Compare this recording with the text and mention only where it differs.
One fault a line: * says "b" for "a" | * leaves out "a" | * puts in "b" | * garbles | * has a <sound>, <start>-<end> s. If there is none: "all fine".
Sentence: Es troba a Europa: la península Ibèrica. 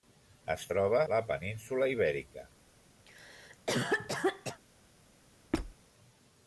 * leaves out "a Europa"
* has a cough, 3.1-4.6 s
* has a squeak, 5.5-5.8 s